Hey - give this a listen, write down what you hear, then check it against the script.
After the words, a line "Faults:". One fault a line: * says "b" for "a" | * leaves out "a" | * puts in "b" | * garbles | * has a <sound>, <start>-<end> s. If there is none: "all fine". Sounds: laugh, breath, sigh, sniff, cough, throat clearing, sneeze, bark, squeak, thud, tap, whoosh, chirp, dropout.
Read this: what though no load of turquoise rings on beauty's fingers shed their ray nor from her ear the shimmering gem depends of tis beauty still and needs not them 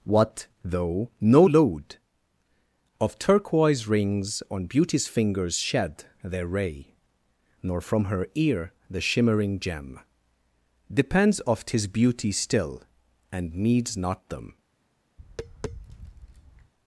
what though no load of turquoise rings on beauty's fingers shed their ray nor from her ear the shimmering gem depends of tis beauty still and needs not them
Faults:
* has a tap, 15.2-16.7 s